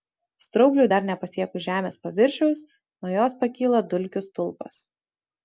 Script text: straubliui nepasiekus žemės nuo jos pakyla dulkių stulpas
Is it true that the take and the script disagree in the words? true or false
true